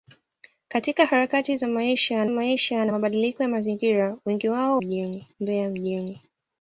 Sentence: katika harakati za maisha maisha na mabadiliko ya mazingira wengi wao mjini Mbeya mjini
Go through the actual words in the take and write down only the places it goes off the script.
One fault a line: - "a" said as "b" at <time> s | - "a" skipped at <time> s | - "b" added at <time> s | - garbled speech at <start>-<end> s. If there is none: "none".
none